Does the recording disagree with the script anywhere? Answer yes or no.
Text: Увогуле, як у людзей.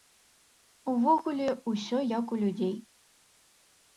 yes